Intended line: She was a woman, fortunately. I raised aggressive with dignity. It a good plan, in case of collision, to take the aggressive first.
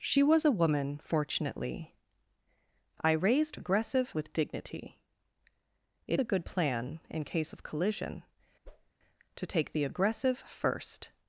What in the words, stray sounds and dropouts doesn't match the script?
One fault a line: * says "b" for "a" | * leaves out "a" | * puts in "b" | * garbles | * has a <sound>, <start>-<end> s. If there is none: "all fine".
* has a whoosh, 8.6-8.9 s